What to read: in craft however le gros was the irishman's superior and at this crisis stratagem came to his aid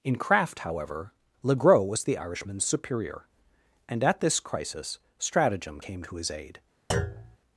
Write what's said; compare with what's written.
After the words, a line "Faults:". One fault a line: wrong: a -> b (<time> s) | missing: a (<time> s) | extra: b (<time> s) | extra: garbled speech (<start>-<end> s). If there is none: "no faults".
in craft however le gros was the irishman's superior and at this crisis stratagem came to his aid
Faults:
no faults